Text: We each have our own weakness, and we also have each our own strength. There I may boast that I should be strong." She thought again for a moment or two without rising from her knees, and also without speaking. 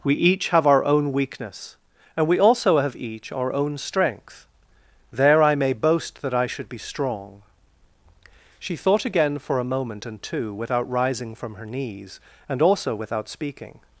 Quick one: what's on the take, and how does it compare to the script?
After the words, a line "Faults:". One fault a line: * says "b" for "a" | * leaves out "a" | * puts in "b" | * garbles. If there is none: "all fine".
We each have our own weakness, and we also have each our own strength. There I may boast that I should be strong." She thought again for a moment and two without rising from her knees, and also without speaking.
Faults:
* says "and" for "or"